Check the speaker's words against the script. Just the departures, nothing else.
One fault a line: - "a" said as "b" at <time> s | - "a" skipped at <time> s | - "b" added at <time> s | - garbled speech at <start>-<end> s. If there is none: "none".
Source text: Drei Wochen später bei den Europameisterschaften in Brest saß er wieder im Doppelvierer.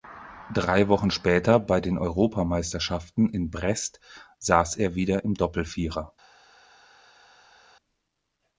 none